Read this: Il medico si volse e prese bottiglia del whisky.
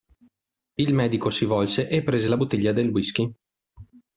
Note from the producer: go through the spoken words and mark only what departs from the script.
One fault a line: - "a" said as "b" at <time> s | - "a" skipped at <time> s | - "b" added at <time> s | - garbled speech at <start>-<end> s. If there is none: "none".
- "la" added at 2.2 s